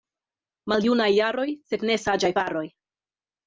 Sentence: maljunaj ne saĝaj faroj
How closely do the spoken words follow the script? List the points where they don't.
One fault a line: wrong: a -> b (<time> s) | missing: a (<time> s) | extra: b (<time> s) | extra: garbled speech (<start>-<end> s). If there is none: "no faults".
extra: jaroj sed (1.2 s)